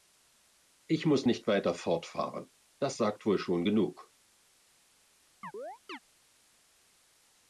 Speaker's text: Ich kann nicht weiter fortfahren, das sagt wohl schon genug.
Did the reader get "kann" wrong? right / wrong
wrong